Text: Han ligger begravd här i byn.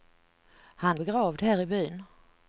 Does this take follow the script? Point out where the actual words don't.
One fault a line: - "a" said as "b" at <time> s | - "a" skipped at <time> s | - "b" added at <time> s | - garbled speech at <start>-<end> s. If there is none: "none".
- "ligger" skipped at 0.9 s